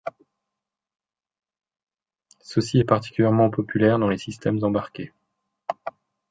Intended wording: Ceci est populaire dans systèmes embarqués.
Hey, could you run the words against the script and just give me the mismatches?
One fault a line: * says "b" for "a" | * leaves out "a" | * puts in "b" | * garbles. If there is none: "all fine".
* puts in "particulièrement"
* puts in "les"